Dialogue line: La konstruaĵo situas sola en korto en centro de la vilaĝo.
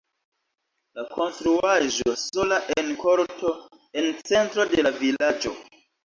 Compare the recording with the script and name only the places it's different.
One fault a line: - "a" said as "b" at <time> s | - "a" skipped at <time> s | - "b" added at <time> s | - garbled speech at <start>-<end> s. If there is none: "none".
- "situas" skipped at 2.1 s